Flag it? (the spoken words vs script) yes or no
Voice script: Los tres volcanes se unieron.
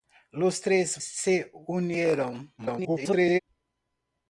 yes